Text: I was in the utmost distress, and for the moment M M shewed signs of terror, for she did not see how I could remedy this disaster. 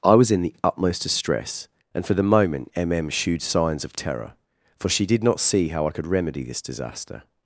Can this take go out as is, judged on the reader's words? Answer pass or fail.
pass